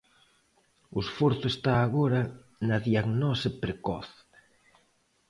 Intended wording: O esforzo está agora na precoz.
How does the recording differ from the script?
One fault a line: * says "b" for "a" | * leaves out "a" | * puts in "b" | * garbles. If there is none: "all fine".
* puts in "diagnose"